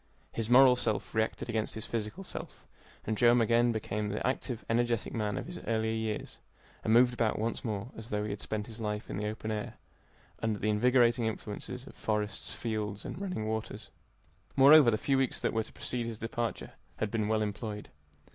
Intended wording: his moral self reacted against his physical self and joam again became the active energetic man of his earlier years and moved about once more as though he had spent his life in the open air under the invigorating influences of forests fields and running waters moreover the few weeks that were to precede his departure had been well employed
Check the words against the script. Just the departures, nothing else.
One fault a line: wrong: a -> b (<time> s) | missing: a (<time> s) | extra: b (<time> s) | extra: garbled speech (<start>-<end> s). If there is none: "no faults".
no faults